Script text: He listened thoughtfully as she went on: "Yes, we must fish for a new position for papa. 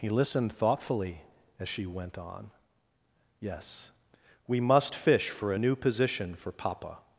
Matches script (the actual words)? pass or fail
pass